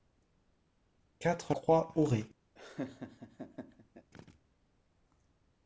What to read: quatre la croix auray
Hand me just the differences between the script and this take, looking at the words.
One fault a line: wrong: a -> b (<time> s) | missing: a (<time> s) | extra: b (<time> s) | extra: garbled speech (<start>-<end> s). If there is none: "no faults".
missing: la (1.5 s)